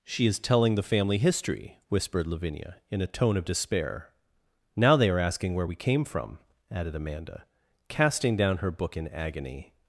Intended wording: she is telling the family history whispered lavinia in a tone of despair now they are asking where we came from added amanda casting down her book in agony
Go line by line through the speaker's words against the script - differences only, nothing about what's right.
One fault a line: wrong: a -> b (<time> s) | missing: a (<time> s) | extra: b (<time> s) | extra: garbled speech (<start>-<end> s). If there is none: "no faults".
no faults